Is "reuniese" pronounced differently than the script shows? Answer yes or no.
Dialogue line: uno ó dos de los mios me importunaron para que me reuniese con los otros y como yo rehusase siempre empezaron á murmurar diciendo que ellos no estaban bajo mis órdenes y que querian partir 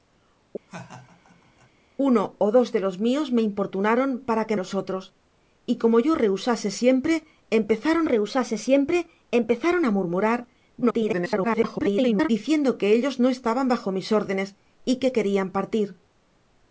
yes